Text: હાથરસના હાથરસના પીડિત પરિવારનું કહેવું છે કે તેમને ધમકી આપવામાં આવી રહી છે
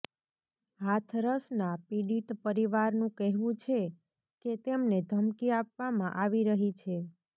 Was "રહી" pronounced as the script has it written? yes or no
yes